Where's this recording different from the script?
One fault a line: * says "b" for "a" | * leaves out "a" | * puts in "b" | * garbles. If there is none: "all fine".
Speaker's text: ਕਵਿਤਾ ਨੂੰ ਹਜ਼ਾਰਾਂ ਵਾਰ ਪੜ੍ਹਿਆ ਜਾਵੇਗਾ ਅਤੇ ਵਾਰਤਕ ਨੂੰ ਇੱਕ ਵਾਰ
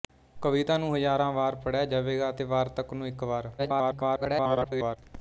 * garbles